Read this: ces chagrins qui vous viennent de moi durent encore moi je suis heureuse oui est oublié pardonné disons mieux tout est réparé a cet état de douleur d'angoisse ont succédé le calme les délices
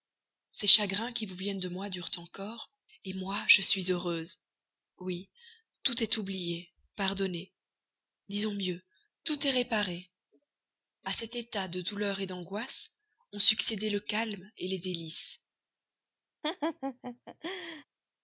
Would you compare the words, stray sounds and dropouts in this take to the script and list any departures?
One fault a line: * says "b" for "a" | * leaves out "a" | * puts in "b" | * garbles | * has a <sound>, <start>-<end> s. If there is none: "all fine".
* puts in "tout"
* has a laugh, 16.4-17.8 s